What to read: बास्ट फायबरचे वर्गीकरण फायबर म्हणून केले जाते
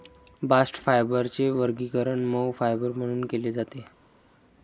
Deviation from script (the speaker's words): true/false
true